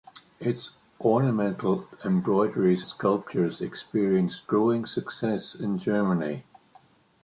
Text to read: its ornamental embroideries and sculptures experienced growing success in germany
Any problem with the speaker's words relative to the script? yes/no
yes